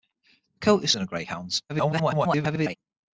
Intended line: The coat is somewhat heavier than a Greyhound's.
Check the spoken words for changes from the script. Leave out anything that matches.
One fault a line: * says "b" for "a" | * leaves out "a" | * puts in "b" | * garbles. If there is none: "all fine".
* leaves out "somewhat heavier"
* garbles